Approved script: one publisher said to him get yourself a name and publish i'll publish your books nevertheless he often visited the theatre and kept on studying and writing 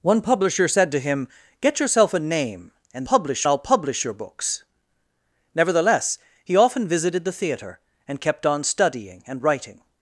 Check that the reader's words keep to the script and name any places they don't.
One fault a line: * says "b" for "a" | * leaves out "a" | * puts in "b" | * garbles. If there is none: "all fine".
all fine